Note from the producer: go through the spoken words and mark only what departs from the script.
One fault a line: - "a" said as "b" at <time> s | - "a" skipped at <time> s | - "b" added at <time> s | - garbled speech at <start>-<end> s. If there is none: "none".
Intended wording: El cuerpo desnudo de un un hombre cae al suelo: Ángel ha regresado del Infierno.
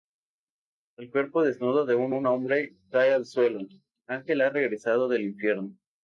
none